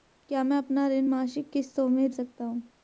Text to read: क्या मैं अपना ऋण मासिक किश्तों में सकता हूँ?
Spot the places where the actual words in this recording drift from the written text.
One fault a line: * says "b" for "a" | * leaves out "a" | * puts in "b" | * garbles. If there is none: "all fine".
all fine